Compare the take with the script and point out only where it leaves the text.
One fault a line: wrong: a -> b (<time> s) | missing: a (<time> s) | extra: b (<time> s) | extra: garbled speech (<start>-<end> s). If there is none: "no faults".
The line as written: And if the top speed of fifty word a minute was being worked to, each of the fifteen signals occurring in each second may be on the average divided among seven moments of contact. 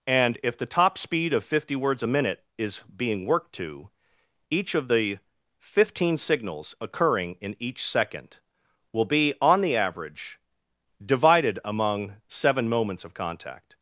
wrong: word -> words (1.8 s)
wrong: was -> is (2.6 s)
wrong: may -> will (8.9 s)